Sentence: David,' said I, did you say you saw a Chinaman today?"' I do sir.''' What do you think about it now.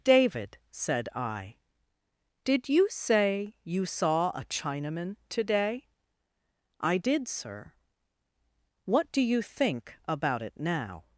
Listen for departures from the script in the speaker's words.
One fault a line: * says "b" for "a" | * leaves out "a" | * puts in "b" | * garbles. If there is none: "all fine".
* says "did" for "do"